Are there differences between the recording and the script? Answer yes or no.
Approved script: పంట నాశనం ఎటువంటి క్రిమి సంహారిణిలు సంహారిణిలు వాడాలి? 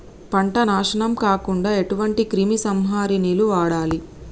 yes